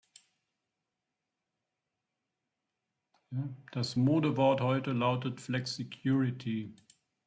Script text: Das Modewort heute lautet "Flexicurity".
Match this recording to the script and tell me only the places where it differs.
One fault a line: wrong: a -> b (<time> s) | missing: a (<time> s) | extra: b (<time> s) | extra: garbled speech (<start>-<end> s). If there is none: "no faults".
no faults